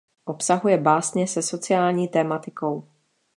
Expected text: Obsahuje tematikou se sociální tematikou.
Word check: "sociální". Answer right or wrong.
right